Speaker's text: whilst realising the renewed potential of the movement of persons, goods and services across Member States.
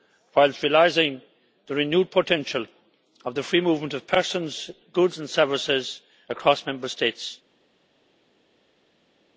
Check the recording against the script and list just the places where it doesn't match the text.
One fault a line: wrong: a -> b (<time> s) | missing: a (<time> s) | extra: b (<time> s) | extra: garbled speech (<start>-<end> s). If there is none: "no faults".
extra: free (3.4 s)